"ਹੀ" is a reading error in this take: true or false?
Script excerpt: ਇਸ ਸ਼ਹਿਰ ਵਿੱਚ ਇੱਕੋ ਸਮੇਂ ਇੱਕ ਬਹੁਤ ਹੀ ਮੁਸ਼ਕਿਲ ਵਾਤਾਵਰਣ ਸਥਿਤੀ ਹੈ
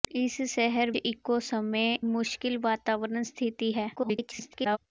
true